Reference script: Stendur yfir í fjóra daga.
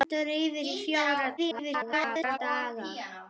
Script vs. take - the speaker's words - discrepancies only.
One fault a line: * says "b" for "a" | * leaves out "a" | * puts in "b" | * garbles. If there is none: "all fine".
* garbles